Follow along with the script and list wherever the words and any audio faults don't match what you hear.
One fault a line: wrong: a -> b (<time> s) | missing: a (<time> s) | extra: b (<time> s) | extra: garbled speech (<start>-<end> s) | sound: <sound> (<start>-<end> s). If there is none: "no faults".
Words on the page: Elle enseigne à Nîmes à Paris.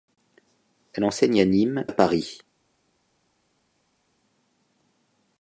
no faults